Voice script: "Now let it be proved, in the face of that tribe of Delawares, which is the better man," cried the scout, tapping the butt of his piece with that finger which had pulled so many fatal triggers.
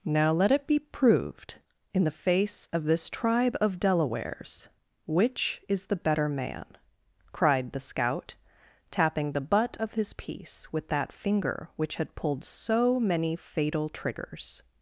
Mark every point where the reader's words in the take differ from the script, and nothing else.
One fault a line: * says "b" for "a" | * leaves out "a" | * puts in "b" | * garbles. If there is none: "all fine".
* says "this" for "that"